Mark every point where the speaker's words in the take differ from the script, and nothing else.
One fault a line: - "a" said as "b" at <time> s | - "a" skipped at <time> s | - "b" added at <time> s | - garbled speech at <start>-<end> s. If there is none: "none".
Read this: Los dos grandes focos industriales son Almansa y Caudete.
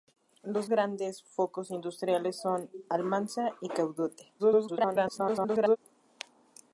- "dos" skipped at 0.7 s
- garbled speech at 4.4-5.8 s